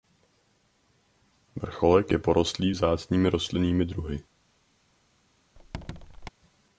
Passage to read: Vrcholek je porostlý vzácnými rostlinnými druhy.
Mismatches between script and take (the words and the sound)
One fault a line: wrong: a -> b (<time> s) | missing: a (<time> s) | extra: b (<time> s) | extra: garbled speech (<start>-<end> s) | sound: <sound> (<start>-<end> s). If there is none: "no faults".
sound: squeak (5.6-6.3 s)